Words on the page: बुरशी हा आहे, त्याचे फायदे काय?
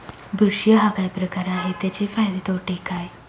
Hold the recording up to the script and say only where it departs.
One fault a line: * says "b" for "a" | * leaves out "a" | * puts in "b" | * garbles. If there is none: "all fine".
* puts in "काय प्रकार"
* puts in "तोटे"